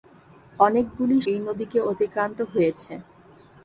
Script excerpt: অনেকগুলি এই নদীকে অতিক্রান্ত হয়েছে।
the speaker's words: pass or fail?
pass